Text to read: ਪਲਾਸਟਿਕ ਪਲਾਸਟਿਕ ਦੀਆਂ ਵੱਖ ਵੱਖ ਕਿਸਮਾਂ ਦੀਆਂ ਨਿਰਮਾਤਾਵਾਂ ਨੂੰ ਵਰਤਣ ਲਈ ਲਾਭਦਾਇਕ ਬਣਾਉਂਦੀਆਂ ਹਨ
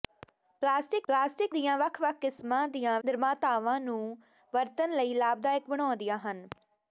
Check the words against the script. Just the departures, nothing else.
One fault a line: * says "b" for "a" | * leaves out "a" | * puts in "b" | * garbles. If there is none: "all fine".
all fine